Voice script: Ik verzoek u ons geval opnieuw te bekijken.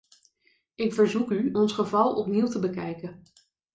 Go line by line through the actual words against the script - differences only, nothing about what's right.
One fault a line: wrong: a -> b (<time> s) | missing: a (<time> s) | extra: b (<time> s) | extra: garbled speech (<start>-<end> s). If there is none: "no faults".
no faults